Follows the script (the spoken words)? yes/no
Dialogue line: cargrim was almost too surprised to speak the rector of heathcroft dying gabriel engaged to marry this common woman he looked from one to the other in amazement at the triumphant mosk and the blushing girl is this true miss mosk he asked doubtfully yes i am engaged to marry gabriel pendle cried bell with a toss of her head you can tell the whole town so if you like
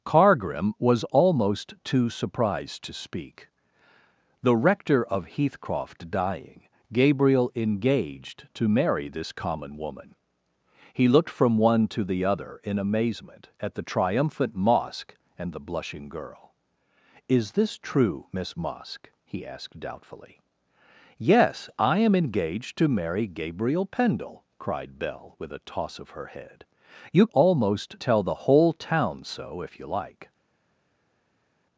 no